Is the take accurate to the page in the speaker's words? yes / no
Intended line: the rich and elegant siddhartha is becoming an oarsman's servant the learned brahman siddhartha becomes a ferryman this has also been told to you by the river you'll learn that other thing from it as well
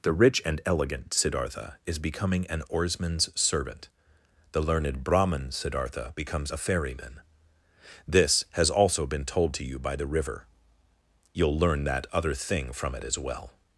yes